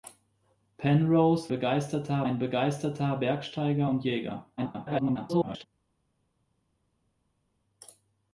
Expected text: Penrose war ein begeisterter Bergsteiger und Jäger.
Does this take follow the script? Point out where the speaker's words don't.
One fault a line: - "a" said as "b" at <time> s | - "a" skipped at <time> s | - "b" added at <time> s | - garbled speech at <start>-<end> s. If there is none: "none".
- "war" said as "begeisterter" at 1.5 s
- garbled speech at 4.6-5.7 s